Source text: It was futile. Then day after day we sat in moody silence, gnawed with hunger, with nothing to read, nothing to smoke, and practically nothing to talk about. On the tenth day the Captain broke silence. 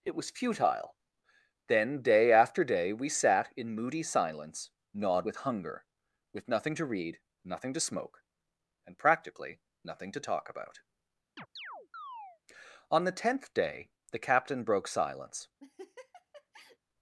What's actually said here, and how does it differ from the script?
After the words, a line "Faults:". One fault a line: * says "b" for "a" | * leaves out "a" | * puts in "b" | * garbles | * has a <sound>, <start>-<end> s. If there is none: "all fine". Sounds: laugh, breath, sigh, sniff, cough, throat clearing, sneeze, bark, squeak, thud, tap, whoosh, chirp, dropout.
It was futile. Then day after day we sat in moody silence, gnawed with hunger, with nothing to read, nothing to smoke, and practically nothing to talk about. On the tenth day the Captain broke silence.
Faults:
* has a chirp, 11.4-12.4 s
* has a laugh, 15.6-16.8 s